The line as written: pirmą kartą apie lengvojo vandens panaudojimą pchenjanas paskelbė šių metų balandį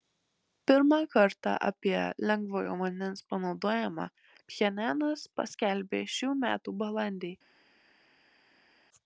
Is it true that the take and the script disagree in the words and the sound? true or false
false